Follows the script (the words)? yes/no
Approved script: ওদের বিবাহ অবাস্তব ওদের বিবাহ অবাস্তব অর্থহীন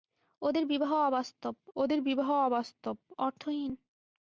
yes